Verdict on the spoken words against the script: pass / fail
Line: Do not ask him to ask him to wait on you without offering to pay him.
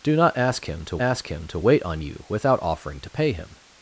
pass